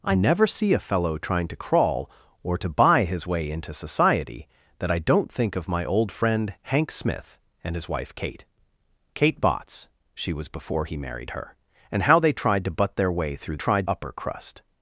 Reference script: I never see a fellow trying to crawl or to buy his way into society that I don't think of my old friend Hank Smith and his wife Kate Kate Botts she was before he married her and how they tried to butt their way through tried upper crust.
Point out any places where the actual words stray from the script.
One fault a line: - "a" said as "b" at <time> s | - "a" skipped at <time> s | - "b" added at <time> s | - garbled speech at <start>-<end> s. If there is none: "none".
none